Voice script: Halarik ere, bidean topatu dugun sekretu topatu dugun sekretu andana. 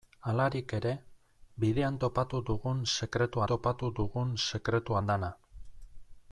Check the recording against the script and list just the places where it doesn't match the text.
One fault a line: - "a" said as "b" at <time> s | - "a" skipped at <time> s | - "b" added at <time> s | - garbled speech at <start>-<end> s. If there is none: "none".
none